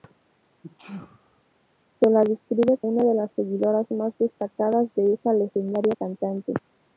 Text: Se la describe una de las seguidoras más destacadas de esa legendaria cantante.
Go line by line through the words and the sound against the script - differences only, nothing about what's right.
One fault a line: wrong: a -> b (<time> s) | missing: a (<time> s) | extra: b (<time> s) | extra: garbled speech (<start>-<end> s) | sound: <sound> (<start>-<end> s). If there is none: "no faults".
sound: sneeze (0.6-1.4 s)